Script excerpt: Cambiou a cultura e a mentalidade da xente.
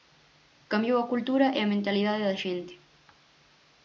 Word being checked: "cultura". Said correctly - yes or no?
yes